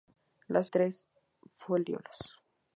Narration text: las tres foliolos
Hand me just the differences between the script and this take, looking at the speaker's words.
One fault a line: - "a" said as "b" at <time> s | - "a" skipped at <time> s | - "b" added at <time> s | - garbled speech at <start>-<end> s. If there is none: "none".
none